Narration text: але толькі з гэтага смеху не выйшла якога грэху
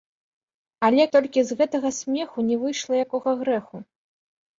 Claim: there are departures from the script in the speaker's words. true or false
false